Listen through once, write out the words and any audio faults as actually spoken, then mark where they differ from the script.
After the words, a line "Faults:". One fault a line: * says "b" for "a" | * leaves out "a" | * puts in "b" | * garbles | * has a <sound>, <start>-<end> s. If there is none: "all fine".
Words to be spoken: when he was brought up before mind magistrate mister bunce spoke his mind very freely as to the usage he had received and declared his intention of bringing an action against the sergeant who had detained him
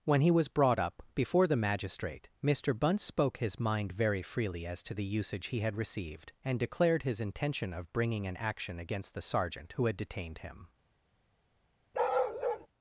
when he was brought up before the magistrate mister bunce spoke his mind very freely as to the usage he had received and declared his intention of bringing an action against the sergeant who had detained him
Faults:
* says "the" for "mind"
* has a bark, 11.9-12.7 s